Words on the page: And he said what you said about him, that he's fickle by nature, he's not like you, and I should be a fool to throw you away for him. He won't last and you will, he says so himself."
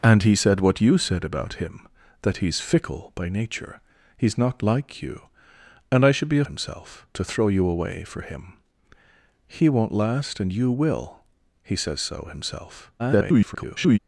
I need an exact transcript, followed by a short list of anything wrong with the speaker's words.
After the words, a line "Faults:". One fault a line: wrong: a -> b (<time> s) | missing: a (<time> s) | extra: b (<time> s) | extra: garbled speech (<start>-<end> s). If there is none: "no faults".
And he said what you said about him, that he's fickle by nature, he's not like you, and I should be a himself to throw you away for him. He won't last and you will, he says so himself." [garbled]
Faults:
wrong: fool -> himself (6.4 s)
extra: garbled speech (13.0-14.0 s)